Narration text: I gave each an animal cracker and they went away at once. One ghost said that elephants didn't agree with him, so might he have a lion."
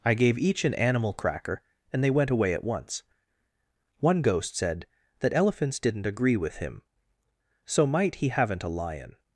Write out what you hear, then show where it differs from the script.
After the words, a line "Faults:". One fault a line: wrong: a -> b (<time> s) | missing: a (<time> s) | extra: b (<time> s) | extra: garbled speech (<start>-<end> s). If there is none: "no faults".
I gave each an animal cracker and they went away at once. One ghost said that elephants didn't agree with him, so might he haven't a lion."
Faults:
wrong: have -> haven't (8.3 s)